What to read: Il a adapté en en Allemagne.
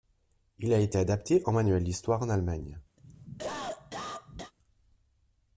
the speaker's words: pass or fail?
fail